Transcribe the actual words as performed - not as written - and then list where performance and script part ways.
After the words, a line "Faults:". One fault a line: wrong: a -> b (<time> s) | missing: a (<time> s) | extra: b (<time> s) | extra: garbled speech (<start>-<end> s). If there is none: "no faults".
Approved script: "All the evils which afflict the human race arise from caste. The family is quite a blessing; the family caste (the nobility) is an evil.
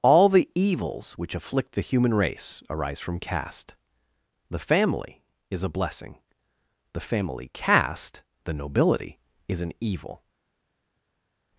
"All the evils which afflict the human race arise from caste. The family is a blessing; the family caste (the nobility) is an evil.
Faults:
missing: quite (5.6 s)